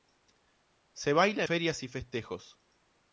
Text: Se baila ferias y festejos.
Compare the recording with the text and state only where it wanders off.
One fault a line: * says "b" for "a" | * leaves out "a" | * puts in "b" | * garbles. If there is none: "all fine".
all fine